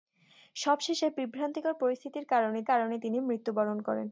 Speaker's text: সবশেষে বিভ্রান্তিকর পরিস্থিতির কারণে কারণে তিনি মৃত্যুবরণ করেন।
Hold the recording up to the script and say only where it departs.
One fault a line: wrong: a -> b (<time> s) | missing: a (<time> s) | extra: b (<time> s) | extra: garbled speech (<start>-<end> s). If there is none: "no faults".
no faults